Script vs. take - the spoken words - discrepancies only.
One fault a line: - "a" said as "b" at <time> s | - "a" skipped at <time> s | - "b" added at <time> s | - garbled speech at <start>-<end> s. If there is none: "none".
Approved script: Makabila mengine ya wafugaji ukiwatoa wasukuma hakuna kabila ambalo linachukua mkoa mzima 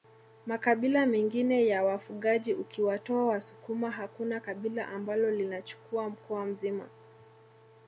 none